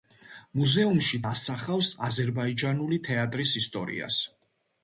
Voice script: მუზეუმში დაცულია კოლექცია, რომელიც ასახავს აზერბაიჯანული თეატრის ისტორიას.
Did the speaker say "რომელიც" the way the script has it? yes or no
no